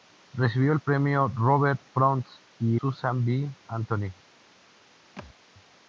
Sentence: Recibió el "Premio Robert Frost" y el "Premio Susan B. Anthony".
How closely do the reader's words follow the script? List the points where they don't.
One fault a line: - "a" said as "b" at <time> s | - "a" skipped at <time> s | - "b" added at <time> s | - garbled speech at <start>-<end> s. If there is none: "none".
- "el Premio" skipped at 2.8 s